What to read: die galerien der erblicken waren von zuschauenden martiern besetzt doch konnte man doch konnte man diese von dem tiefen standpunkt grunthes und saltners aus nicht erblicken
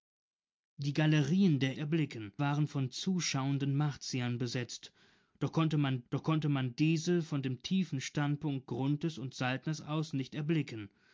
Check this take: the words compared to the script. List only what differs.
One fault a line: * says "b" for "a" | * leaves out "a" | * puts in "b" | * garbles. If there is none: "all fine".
all fine